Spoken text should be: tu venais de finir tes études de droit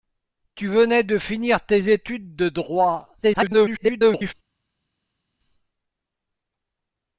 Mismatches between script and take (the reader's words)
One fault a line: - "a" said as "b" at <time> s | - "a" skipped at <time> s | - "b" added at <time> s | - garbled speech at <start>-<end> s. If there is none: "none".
- garbled speech at 3.2-4.3 s